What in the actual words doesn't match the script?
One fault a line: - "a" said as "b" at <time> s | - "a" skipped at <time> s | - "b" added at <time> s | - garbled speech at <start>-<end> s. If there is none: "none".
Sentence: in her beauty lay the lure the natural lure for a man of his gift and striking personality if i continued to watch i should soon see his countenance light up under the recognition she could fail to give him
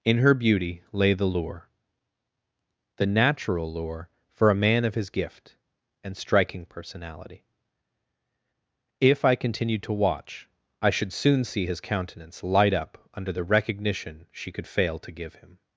none